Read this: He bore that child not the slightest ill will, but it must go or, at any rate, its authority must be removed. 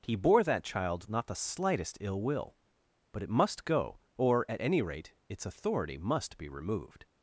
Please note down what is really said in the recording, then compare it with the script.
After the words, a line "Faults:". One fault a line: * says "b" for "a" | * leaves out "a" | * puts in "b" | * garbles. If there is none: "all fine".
He bore that child not the slightest ill will, but it must go or, at any rate, its authority must be removed.
Faults:
all fine